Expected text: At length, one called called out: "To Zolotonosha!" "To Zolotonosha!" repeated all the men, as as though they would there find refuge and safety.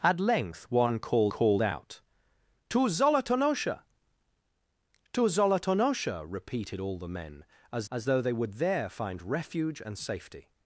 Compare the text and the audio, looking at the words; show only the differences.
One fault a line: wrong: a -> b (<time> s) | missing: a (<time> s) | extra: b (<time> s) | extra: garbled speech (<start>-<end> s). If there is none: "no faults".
no faults